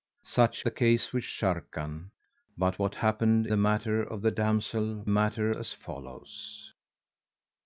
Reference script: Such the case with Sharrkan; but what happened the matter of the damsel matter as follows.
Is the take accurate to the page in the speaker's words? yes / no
yes